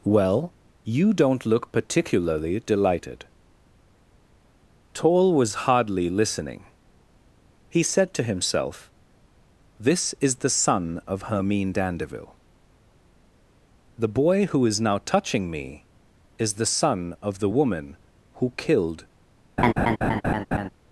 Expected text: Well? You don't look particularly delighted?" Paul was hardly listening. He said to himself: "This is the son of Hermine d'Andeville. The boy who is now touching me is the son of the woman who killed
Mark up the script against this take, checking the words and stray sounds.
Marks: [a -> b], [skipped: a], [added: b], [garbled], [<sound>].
Well? You don't look particularly delighted?" [Paul -> Toll] was hardly listening. He said to himself: "This is the son of Hermine d'Andeville. The boy who is now touching me is the son of the woman who killed [laugh]